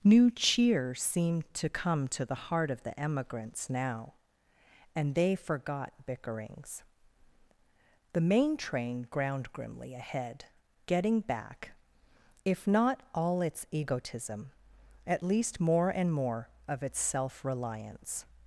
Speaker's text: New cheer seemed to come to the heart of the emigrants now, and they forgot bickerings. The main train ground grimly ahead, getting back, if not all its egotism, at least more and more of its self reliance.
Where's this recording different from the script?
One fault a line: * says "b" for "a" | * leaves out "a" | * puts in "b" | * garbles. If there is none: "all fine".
all fine